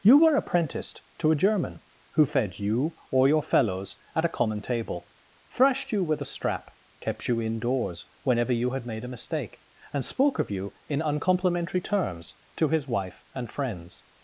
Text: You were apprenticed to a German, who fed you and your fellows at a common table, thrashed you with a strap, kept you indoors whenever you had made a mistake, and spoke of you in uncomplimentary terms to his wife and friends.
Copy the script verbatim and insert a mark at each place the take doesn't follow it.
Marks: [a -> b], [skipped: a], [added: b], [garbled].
You were apprenticed to a German, who fed you [and -> or] your fellows at a common table, thrashed you with a strap, kept you indoors whenever you had made a mistake, and spoke of you in uncomplimentary terms to his wife and friends.